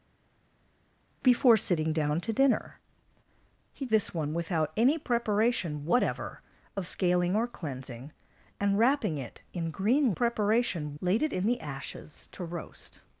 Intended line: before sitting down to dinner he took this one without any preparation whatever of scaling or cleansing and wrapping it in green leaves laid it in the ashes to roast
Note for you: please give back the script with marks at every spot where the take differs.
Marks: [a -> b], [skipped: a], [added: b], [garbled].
before sitting down to dinner he [skipped: took] this one without any preparation whatever of scaling or cleansing and wrapping it in green [leaves -> preparation] laid it in the ashes to roast